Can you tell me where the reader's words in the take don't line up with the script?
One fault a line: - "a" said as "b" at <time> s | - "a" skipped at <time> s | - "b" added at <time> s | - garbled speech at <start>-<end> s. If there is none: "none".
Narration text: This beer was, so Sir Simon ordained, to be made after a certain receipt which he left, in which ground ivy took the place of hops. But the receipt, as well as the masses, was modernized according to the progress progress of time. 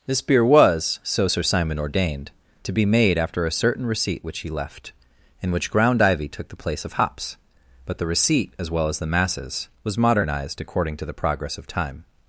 - "progress" skipped at 11.6 s